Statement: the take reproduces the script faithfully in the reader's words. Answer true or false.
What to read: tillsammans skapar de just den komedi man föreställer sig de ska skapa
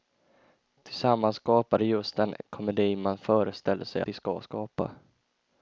true